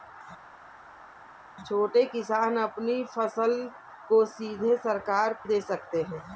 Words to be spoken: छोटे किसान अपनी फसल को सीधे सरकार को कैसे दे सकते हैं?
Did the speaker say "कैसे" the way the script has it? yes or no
no